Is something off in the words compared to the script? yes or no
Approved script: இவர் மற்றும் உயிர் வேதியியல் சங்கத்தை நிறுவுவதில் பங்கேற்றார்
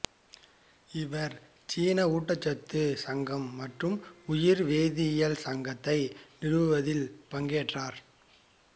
yes